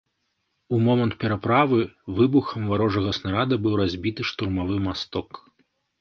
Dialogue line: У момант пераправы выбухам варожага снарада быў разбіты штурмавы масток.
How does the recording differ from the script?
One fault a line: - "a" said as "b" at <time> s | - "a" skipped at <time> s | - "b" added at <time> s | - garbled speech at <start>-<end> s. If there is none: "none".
none